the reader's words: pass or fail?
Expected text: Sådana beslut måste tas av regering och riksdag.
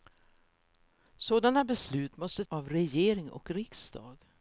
fail